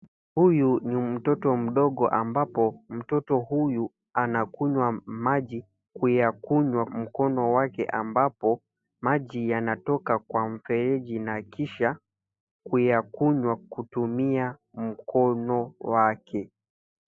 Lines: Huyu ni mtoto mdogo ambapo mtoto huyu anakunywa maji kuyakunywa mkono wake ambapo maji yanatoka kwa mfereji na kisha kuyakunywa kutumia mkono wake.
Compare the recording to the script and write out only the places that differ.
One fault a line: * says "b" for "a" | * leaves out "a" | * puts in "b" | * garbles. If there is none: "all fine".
all fine